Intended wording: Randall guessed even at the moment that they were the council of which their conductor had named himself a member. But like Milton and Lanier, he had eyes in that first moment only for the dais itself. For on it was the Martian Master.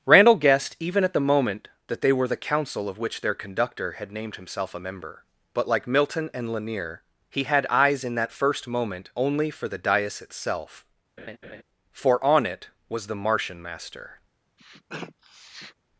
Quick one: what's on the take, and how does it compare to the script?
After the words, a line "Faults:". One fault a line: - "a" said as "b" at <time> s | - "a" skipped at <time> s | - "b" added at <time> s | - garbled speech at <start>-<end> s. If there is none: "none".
Randall guessed even at the moment that they were the council of which their conductor had named himself a member. But like Milton and Lanier, he had eyes in that first moment only for the dais itself. For on it was the Martian Master.
Faults:
none